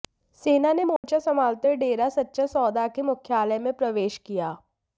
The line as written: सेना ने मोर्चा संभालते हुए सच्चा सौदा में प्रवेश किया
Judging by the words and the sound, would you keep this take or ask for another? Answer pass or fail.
fail